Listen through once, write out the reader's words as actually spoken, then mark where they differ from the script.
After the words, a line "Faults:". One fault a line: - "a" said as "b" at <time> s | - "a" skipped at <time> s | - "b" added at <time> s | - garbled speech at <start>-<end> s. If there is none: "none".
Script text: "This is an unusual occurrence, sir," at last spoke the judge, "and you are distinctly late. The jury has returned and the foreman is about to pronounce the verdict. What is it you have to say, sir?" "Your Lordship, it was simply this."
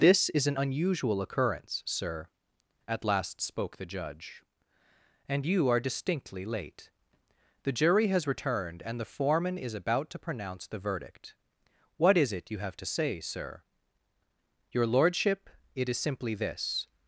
"This is an unusual occurrence, sir," at last spoke the judge, "and you are distinctly late. The jury has returned and the foreman is about to pronounce the verdict. What is it you have to say, sir?" "Your Lordship, it is simply this."
Faults:
- "was" said as "is" at 15.9 s